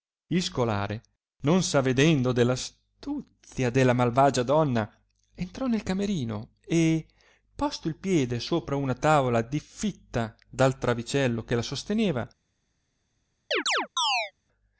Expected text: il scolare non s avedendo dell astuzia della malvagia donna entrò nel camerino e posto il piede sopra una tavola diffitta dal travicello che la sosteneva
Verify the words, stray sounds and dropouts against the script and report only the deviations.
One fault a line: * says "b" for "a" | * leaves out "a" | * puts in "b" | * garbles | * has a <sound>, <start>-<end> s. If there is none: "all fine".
* has a chirp, 13.5-14.3 s